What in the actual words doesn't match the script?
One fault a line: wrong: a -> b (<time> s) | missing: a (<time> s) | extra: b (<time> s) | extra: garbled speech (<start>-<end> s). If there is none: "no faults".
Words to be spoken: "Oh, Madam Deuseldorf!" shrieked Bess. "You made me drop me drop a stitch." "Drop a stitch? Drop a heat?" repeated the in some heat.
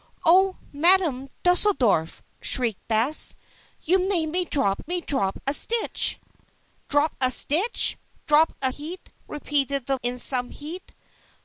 no faults